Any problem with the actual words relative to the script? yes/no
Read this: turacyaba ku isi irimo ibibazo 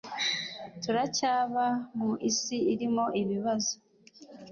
yes